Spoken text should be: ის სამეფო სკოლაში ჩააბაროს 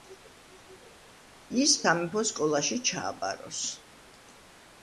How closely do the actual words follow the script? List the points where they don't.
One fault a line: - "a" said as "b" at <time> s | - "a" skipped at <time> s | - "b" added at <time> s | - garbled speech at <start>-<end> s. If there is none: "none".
none